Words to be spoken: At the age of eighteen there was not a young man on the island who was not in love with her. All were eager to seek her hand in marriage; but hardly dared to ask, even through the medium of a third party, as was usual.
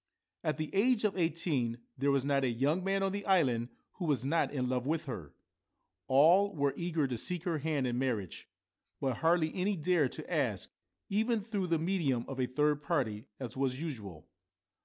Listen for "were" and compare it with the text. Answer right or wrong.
right